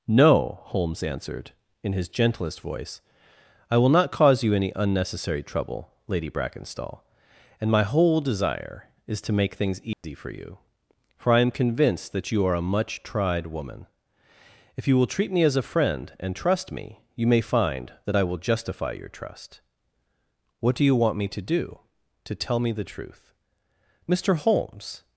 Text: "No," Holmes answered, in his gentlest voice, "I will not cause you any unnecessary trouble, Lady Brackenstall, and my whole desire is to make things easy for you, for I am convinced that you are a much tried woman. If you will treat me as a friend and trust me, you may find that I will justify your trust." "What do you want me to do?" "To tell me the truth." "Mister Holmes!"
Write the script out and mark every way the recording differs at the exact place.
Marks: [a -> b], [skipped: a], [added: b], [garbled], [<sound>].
"No," Holmes answered, in his gentlest voice, "I will not cause you any unnecessary trouble, Lady Brackenstall, and my whole desire is to make things easy [dropout] for you, for I am convinced that you are a much tried woman. If you will treat me as a friend and trust me, you may find that I will justify your trust." "What do you want me to do?" "To tell me the truth." "Mister Holmes!"